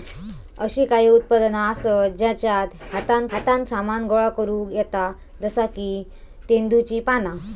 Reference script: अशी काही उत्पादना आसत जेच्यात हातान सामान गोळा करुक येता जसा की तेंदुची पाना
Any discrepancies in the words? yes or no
yes